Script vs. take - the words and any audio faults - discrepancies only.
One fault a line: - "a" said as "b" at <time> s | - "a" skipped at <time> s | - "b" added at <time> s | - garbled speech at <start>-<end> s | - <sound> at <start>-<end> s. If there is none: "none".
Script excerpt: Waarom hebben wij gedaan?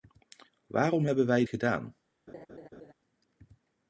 - laugh at 2.3-2.9 s